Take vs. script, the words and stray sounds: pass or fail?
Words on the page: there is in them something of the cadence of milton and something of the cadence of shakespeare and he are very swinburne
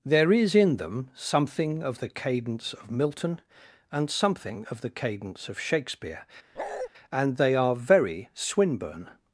fail